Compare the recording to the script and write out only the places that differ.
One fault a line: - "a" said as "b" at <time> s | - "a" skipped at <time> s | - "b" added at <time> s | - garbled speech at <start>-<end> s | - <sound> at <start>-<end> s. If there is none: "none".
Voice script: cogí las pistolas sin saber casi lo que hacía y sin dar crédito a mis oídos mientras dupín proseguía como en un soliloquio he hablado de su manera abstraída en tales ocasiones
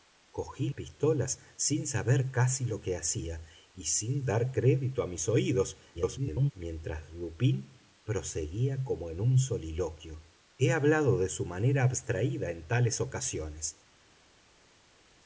- "las" skipped at 0.7 s
- garbled speech at 5.9-6.5 s